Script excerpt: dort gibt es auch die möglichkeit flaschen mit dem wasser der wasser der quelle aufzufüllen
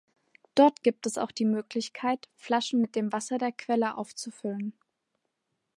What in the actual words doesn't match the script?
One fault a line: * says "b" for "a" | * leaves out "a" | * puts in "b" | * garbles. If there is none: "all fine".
* leaves out "wasser der"